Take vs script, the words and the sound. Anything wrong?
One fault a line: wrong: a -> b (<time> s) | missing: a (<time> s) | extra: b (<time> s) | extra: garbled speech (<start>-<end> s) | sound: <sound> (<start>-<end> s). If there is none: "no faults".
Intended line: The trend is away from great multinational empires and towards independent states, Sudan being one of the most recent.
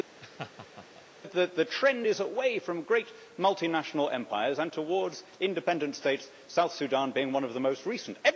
sound: laugh (0.2-1.0 s)
extra: South (6.5 s)